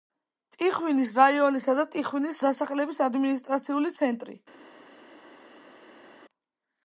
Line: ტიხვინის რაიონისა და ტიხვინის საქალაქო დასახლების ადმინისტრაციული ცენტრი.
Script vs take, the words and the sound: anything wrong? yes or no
yes